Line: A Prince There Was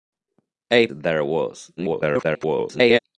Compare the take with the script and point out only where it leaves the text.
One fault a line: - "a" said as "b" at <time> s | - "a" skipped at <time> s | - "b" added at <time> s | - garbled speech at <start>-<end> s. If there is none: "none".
- "Prince" skipped at 0.9 s
- garbled speech at 1.8-3.0 s